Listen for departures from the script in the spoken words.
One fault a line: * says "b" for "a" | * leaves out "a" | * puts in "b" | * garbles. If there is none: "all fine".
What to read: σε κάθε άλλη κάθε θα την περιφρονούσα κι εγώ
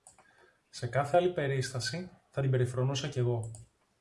* says "περίσταση" for "κάθε"